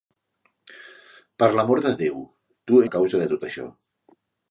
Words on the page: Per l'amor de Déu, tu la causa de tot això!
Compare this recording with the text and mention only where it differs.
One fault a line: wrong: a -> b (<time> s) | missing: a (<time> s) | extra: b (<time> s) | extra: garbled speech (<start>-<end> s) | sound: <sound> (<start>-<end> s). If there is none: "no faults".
no faults